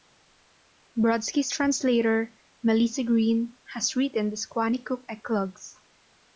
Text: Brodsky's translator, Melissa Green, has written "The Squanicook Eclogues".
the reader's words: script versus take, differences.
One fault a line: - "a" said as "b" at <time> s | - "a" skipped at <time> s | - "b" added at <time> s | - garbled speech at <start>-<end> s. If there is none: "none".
none